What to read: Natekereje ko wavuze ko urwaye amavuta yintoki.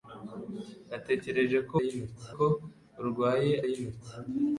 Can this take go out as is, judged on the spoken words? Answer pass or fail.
fail